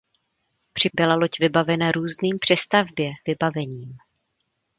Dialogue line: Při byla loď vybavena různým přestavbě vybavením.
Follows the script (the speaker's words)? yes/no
yes